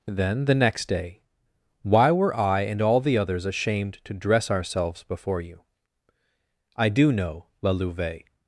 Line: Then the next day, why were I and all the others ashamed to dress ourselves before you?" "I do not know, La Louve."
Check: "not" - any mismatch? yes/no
yes